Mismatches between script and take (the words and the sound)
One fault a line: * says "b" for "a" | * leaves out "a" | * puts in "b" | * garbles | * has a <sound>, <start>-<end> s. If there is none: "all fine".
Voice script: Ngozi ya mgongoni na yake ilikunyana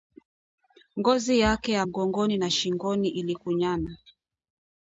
* puts in "yake"
* says "shingoni" for "yake"